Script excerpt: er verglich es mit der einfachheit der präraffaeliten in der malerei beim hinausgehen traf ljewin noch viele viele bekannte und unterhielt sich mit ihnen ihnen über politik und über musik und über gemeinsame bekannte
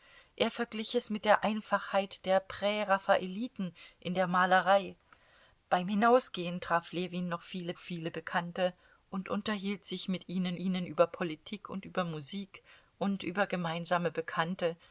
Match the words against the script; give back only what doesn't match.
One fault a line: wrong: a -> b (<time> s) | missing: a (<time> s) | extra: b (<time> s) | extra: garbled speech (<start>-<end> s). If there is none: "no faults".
no faults